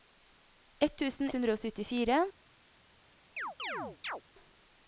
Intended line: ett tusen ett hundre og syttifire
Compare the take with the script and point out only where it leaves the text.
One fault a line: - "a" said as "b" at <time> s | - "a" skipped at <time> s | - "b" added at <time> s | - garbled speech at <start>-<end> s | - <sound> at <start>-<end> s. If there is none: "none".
- "ett" skipped at 1.3 s
- chirp at 3.4-4.2 s